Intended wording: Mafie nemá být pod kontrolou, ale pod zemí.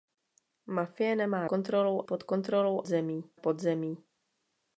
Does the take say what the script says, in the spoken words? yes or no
no